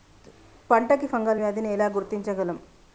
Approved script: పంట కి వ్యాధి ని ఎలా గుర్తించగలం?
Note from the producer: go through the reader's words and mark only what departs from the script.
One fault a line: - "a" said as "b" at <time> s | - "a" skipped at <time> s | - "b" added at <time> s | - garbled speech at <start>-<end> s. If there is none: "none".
- "ఫంగల్" added at 1.0 s